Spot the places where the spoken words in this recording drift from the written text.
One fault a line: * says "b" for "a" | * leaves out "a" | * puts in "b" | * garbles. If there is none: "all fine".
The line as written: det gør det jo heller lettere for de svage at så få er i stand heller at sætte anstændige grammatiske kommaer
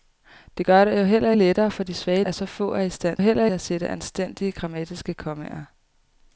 all fine